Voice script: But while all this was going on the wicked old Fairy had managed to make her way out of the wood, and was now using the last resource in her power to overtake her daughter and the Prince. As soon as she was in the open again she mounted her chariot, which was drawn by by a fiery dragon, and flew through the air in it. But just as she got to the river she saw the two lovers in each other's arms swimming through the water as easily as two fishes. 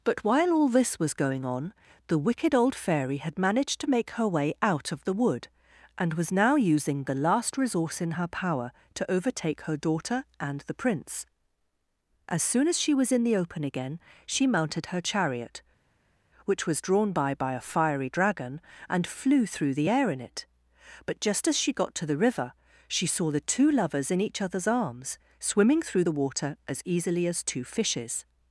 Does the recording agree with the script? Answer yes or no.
yes